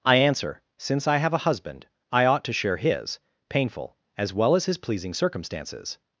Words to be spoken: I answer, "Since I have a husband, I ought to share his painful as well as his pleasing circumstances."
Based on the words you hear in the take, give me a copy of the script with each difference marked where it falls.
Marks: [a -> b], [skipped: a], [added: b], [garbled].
I answer, "Since I have a husband, I ought to share his painful as well as his pleasing circumstances."